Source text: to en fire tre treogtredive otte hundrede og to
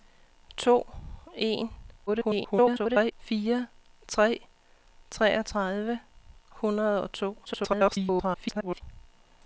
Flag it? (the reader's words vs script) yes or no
yes